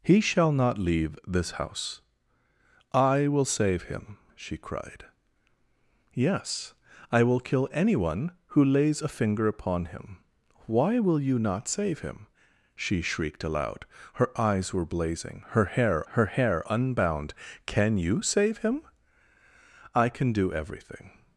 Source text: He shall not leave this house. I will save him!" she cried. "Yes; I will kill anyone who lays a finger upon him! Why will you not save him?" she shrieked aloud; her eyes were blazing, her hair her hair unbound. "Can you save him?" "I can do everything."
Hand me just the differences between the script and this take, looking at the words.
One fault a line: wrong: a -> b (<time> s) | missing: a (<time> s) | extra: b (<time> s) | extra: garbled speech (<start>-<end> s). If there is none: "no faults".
no faults